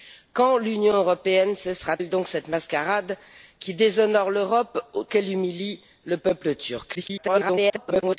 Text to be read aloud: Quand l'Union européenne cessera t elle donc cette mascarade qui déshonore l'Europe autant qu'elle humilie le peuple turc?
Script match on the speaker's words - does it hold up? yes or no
no